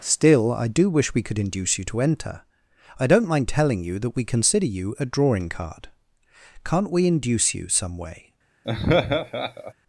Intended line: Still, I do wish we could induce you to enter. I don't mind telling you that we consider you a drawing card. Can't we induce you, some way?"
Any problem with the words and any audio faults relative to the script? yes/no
yes